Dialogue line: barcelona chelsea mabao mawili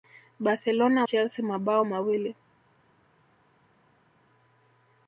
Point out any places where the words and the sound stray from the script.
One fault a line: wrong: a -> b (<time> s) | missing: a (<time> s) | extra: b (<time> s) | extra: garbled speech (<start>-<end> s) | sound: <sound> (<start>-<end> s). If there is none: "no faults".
no faults